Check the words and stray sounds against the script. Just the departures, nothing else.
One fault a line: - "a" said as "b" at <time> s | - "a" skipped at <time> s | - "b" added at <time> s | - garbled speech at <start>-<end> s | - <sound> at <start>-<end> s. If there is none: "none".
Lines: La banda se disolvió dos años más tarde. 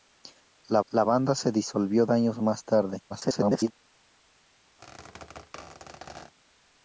- "la" added at 0.9 s
- "dos" skipped at 2.0 s
- garbled speech at 3.1-3.7 s
- squeak at 4.8-6.3 s